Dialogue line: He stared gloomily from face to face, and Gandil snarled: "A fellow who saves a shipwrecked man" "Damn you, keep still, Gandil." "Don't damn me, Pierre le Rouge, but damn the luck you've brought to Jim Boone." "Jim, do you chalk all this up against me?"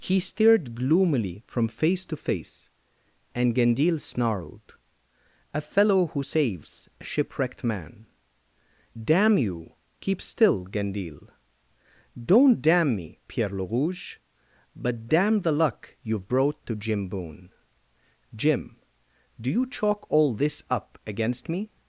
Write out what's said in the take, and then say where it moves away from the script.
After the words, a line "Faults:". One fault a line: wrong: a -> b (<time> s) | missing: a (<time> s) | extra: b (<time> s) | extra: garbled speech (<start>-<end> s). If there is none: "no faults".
He stared gloomily from face to face, and Gandil snarled: "A fellow who saves a shipwrecked man" "Damn you, keep still, Gandil." "Don't damn me, Pierre le Rouge, but damn the luck you've brought to Jim Boone." "Jim, do you chalk all this up against me?"
Faults:
no faults